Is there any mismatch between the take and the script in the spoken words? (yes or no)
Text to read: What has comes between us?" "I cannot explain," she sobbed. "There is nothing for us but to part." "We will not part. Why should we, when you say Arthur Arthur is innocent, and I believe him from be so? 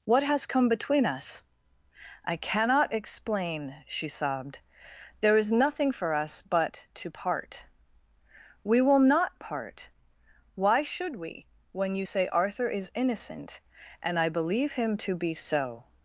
yes